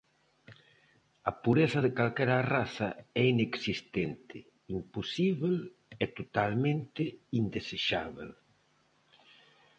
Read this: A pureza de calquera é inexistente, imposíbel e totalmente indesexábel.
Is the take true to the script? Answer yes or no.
no